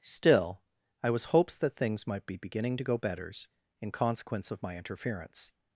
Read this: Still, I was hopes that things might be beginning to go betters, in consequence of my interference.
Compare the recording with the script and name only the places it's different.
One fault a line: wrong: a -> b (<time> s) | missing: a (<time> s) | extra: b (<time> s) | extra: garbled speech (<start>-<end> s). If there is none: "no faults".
no faults